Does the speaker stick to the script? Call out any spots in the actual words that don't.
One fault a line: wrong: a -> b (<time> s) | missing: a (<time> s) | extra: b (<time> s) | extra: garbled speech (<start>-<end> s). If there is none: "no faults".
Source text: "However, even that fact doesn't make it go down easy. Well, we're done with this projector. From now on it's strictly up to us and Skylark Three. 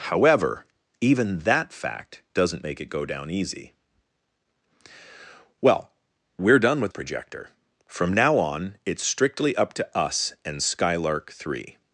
missing: this (6.9 s)